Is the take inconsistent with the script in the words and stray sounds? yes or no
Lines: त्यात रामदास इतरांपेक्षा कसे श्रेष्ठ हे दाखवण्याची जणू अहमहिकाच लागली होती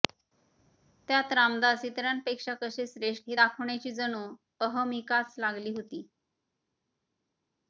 no